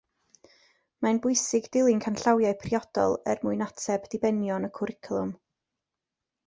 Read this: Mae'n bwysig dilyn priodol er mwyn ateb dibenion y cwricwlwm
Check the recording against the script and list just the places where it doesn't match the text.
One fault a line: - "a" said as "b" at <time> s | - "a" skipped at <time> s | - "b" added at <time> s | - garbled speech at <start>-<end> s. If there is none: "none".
- "canllawiau" added at 2.0 s